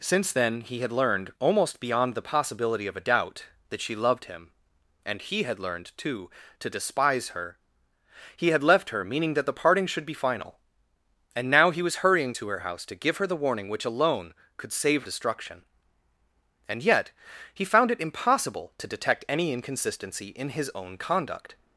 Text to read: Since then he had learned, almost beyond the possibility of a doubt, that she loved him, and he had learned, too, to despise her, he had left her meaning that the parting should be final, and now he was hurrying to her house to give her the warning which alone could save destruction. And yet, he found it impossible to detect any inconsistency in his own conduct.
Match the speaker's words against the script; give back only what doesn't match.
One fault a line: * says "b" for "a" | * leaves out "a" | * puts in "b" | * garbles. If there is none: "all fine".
all fine